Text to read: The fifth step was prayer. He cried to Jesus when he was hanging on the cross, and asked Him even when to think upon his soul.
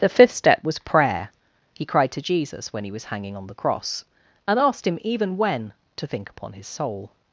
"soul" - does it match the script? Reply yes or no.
yes